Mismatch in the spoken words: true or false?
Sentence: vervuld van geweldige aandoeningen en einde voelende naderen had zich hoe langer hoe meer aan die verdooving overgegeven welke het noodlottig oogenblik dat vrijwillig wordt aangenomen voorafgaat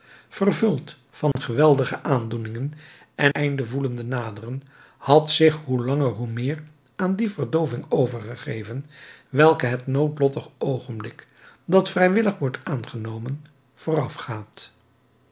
false